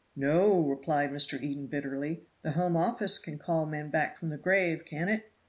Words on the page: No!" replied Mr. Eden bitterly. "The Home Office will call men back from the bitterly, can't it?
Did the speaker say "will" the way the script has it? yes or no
no